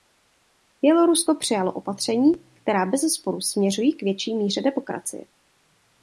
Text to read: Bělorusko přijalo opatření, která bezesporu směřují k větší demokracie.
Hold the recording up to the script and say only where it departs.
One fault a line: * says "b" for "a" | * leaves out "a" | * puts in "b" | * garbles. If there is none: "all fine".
* puts in "míře"